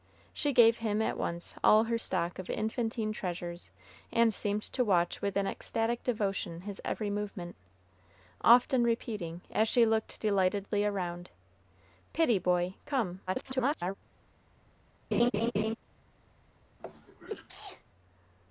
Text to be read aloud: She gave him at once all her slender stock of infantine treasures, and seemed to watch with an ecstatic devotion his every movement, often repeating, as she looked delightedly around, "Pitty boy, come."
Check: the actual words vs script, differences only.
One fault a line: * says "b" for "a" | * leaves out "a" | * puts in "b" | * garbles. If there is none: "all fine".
* leaves out "slender"
* garbles